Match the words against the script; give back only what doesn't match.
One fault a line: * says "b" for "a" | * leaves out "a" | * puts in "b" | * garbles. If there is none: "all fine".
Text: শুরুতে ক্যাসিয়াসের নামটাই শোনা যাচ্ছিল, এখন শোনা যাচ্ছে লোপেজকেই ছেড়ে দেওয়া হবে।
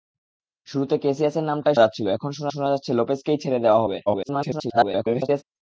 * leaves out "শোনা"
* puts in "শোনা"
* garbles